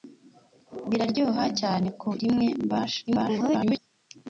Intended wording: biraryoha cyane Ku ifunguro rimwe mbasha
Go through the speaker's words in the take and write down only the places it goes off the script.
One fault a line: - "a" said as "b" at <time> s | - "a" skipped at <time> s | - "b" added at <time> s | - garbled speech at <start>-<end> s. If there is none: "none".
- "ifunguro" skipped at 2.1 s
- garbled speech at 3.1-3.8 s